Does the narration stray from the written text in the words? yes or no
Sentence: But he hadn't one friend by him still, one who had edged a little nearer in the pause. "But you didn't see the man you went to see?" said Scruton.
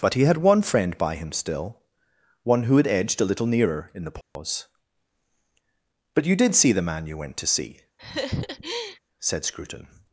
yes